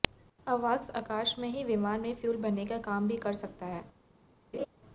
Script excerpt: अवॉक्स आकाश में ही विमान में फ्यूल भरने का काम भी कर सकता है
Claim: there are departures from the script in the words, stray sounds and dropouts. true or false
true